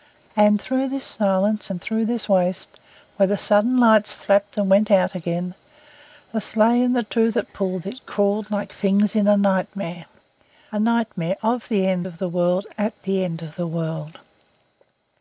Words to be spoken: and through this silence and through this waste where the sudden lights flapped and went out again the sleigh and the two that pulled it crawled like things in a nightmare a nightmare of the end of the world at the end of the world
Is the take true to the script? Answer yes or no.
yes